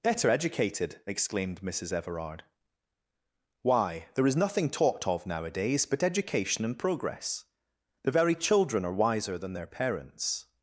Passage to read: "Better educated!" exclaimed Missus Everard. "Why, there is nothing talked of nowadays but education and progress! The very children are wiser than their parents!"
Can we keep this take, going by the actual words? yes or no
yes